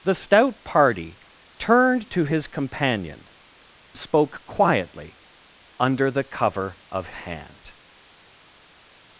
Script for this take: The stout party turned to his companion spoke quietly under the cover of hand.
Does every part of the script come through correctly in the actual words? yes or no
yes